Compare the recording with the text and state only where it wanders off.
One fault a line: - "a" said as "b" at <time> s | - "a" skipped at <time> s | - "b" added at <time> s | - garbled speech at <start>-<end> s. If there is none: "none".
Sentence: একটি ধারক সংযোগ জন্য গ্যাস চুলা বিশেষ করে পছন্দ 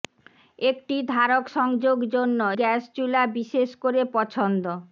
none